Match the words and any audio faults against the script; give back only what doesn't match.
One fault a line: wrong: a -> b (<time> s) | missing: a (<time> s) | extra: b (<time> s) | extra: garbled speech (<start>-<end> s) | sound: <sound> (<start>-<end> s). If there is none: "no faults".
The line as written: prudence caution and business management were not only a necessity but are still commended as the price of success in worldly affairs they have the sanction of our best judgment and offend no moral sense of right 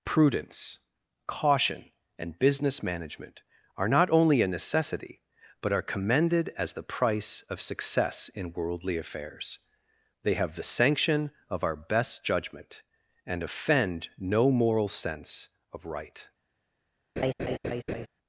wrong: were -> are (3.8 s)
missing: still (5.8 s)
sound: laugh (17.2-18.1 s)